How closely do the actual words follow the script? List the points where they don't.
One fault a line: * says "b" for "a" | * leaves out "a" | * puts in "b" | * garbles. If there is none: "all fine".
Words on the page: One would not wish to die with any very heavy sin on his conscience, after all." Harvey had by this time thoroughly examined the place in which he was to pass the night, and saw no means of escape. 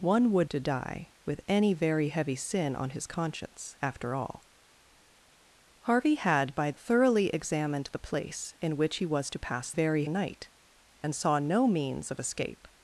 * leaves out "not wish"
* leaves out "this time"
* says "very" for "the"